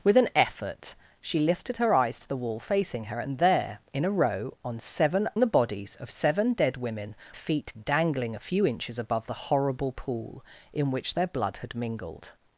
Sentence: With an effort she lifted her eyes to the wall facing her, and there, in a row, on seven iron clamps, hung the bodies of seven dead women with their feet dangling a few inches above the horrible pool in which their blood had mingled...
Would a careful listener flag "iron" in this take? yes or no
yes